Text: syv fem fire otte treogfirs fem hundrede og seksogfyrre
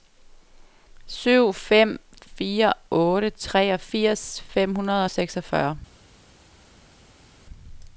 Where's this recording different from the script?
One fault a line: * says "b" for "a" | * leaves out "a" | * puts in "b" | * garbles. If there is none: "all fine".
all fine